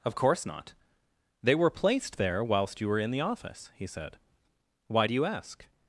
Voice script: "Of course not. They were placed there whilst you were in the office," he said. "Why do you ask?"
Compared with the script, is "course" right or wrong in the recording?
right